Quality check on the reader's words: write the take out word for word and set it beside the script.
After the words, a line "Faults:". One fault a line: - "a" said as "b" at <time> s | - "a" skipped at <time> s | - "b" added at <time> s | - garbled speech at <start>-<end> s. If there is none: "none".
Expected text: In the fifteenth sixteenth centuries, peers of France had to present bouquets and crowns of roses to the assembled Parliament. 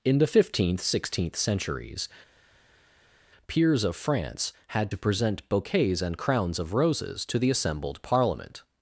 In the fifteenth sixteenth centuries, peers of France had to present bouquets and crowns of roses to the assembled Parliament.
Faults:
none